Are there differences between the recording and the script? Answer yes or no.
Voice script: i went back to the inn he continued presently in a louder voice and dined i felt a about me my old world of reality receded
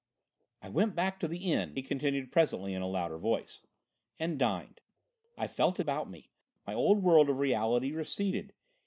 no